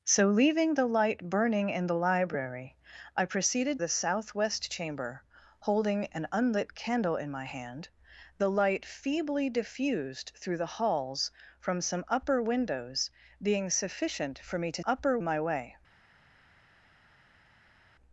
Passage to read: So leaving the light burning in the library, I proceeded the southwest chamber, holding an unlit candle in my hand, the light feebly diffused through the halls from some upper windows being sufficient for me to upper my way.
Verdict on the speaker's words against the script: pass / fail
pass